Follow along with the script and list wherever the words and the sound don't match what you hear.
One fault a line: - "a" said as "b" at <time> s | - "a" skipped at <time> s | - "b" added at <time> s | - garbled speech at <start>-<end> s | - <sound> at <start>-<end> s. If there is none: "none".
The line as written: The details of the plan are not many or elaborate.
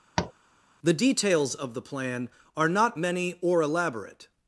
- tap at 0.2-0.3 s